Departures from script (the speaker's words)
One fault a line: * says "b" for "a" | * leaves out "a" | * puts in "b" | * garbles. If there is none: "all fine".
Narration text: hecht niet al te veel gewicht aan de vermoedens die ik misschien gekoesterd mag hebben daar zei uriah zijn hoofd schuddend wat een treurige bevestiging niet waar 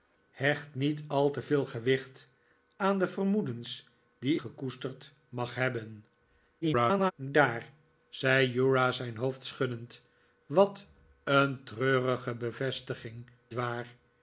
* leaves out "ik misschien"
* garbles
* leaves out "niet"